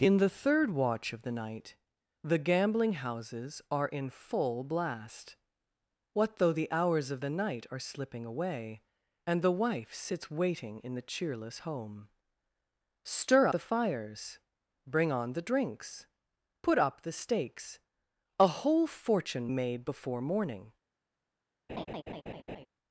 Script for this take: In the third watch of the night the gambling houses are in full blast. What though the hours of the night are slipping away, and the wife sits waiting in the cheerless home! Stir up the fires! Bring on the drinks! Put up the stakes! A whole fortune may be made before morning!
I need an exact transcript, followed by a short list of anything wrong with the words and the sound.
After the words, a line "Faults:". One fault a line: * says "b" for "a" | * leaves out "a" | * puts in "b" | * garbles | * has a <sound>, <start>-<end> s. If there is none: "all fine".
In the third watch of the night the gambling houses are in full blast. What though the hours of the night are slipping away, and the wife sits waiting in the cheerless home! Stir the fires! Bring on the drinks! Put up the stakes! A whole fortune made before morning!
Faults:
* leaves out "up"
* leaves out "may be"
* has a laugh, 21.7-22.7 s